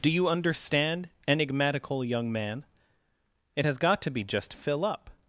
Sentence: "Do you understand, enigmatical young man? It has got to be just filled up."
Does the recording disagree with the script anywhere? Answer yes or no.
yes